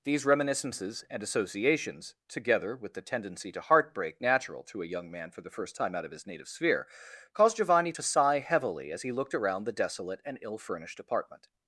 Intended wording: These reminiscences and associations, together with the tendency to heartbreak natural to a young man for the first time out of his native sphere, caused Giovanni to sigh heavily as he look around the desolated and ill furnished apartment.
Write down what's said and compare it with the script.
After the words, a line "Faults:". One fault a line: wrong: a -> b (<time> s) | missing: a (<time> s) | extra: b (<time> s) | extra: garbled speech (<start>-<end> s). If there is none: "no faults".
These reminiscences and associations, together with the tendency to heartbreak natural to a young man for the first time out of his native sphere, caused Giovanni to sigh heavily as he looked around the desolate and ill furnished apartment.
Faults:
wrong: look -> looked (9.1 s)
wrong: desolated -> desolate (9.7 s)